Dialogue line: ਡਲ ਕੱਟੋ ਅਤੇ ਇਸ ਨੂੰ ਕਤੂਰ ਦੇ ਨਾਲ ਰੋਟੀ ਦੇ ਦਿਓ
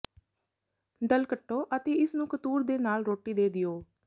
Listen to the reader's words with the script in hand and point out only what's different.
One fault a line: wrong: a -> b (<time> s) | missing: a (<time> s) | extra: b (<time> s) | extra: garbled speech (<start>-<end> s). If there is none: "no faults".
no faults